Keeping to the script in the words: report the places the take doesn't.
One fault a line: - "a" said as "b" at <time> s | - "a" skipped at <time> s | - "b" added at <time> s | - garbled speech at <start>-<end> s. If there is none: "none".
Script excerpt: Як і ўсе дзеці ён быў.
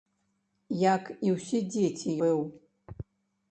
- "ён" skipped at 2.2 s